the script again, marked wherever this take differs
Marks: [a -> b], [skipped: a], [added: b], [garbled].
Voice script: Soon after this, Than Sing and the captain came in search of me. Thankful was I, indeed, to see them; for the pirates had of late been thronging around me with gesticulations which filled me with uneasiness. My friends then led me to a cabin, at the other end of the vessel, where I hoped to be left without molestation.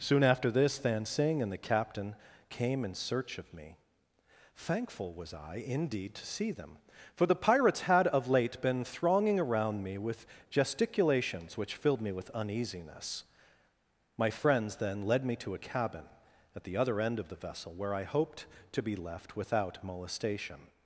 Soon after this, Than Sing and the captain came in search of me. Thankful was I, indeed, to see them; for the pirates had of late been thronging around me with gesticulations which filled me with uneasiness. My friends then led me to a cabin, at the other end of the vessel, where I hoped to be left without molestation.